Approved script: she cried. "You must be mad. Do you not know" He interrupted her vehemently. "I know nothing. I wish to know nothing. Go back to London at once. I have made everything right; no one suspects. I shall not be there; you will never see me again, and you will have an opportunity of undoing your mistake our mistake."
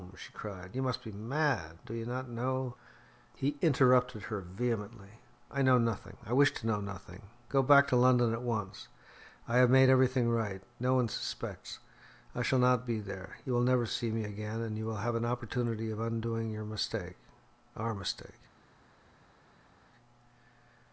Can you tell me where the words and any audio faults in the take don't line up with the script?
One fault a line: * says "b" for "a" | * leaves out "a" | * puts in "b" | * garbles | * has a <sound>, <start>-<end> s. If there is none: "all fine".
all fine